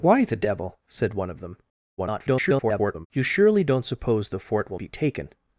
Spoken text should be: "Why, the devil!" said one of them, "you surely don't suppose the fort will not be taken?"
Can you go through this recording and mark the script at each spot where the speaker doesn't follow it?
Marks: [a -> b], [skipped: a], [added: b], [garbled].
"Why, the devil!" said one of them, [garbled] "you surely don't suppose the fort will [skipped: not] be taken?"